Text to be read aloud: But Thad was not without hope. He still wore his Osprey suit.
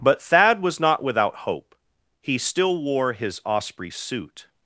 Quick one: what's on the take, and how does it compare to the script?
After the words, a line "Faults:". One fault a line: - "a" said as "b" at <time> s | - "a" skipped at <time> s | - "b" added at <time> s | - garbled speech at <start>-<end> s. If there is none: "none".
But Thad was not without hope. He still wore his Osprey suit.
Faults:
none